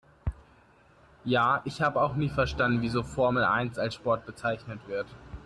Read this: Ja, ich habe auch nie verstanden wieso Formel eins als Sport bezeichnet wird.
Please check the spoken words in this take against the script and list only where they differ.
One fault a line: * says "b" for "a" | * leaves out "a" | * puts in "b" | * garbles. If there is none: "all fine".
all fine